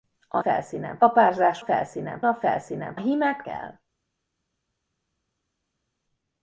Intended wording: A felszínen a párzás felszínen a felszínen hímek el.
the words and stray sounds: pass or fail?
pass